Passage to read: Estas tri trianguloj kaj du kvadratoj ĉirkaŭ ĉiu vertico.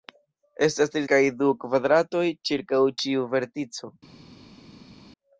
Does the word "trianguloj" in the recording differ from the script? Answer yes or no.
yes